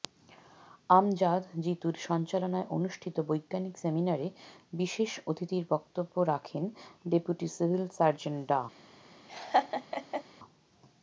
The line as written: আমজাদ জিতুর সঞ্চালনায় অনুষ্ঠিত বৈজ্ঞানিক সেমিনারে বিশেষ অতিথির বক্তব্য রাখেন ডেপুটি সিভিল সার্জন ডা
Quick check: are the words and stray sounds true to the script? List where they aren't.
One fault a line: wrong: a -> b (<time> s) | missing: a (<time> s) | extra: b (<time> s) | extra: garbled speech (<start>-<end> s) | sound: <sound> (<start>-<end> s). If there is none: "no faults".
sound: laugh (9.3-10.2 s)